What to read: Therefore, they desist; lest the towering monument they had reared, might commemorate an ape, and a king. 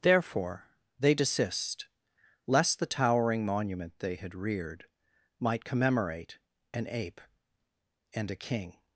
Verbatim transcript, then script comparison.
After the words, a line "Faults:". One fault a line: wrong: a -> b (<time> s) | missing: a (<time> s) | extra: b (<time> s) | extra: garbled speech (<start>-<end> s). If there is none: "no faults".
Therefore, they desist; lest the towering monument they had reared, might commemorate an ape, and a king.
Faults:
no faults